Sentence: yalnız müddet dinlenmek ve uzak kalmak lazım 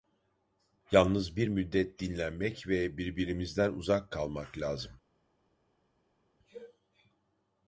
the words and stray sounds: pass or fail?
fail